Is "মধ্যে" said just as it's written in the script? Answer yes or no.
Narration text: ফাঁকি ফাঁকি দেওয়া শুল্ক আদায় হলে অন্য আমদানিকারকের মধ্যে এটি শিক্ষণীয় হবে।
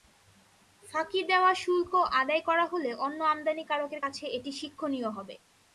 no